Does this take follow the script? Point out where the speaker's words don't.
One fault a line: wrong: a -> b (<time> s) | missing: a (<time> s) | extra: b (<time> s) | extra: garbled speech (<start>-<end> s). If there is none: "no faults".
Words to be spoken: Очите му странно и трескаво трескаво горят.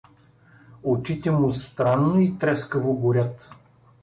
missing: трескаво (2.9 s)